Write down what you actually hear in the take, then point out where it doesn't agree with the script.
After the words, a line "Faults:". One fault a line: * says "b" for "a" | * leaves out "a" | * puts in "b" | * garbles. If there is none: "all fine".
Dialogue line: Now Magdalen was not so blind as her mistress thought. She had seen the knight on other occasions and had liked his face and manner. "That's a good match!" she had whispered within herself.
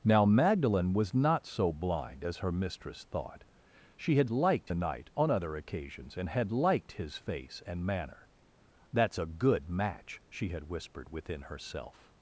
Now Magdalen was not so blind as her mistress thought. She had liked the knight on other occasions and had liked his face and manner. "That's a good match!" she had whispered within herself.
Faults:
* says "liked" for "seen"